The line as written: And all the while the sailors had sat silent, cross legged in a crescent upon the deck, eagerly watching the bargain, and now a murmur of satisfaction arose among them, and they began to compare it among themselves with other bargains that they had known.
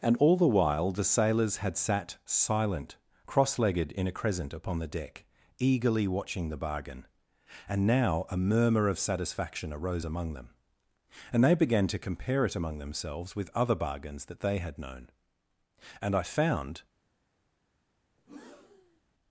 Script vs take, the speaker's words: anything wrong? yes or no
yes